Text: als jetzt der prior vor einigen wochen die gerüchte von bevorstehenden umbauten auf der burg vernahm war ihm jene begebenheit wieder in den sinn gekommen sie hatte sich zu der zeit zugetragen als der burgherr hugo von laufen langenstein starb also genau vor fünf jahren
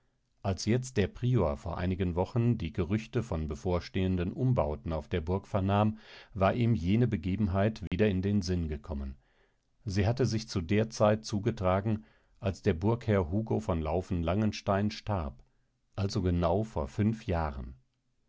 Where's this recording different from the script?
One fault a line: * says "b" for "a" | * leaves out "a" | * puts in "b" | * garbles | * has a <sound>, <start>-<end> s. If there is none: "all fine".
* has a dropout, 7.9-7.9 s